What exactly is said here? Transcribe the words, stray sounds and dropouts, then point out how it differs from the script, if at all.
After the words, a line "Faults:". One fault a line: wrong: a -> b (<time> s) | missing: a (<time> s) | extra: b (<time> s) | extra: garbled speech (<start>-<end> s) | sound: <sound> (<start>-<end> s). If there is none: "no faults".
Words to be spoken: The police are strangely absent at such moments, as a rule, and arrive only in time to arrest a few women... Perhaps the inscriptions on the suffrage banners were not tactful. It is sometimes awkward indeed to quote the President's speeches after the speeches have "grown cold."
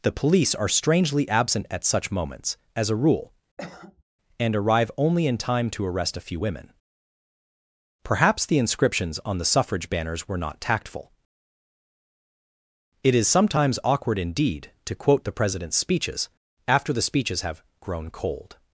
The police are strangely absent at such moments, as a rule, and arrive only in time to arrest a few women... Perhaps the inscriptions on the suffrage banners were not tactful. It is sometimes awkward indeed to quote the President's speeches after the speeches have "grown cold."
Faults:
sound: cough (3.6-4.0 s)